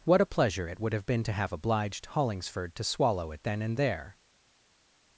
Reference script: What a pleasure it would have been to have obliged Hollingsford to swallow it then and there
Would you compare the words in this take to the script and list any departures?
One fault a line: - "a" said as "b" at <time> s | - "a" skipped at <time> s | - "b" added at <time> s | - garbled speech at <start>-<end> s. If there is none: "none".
none